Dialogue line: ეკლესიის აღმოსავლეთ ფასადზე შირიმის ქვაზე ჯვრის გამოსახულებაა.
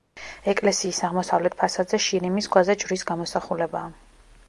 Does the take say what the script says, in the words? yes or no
yes